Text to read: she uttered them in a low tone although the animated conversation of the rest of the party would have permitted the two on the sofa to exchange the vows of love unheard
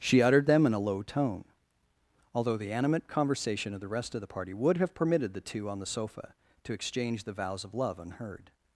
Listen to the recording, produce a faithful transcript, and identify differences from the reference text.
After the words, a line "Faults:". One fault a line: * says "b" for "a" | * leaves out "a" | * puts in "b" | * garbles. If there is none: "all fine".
she uttered them in a low tone although the animate conversation of the rest of the party would have permitted the two on the sofa to exchange the vows of love unheard
Faults:
* says "animate" for "animated"